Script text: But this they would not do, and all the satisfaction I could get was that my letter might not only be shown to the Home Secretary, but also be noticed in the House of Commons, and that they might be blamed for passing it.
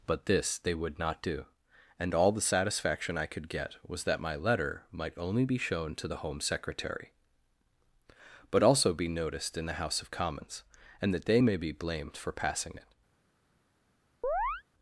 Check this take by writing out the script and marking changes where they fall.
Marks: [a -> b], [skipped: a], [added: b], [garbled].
But this they would not do, and all the satisfaction I could get was that my letter might [skipped: not] only be shown to the Home Secretary, but also be noticed in the House of Commons, and that they [might -> may] be blamed for passing it.